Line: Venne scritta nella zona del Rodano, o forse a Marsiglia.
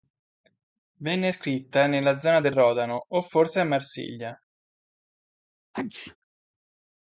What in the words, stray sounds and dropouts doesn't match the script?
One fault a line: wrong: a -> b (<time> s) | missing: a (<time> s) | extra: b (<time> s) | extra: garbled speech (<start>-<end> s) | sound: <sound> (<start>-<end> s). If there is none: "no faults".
sound: sneeze (5.7-6.2 s)